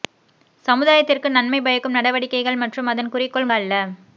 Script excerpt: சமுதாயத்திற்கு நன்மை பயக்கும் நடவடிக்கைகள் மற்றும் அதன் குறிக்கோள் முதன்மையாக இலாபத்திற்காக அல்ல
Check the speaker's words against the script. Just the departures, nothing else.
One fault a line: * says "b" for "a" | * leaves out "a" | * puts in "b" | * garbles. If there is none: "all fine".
* leaves out "முதன்மையாக இலாபத்திற்காக"